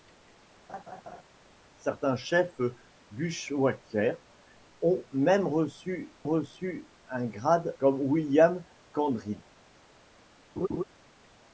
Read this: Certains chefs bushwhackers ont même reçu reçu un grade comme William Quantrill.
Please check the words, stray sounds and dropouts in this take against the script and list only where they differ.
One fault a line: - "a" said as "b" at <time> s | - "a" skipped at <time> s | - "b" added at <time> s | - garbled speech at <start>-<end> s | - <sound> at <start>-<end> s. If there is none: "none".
- laugh at 0.7-1.2 s
- laugh at 10.6-10.8 s